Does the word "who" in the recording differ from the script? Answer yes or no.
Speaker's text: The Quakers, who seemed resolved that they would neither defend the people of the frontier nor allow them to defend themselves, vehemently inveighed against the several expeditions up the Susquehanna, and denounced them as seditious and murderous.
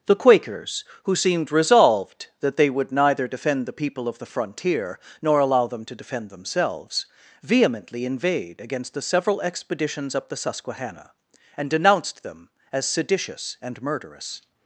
no